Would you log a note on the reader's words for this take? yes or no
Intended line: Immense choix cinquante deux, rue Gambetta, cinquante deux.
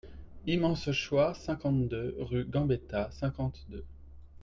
no